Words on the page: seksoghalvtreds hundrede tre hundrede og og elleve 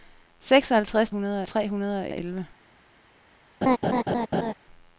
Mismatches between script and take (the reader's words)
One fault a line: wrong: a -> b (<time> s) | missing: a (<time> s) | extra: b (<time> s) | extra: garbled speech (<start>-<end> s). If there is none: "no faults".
no faults